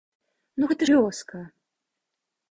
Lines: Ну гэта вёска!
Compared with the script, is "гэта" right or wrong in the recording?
right